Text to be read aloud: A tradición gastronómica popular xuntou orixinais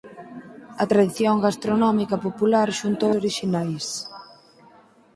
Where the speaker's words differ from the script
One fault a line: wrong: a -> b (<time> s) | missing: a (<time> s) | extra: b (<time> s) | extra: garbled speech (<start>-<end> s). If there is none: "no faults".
no faults